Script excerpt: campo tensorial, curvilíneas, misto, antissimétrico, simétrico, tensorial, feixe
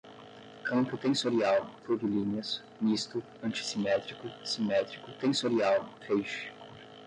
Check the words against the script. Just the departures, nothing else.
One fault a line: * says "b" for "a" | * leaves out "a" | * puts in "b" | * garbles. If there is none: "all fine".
all fine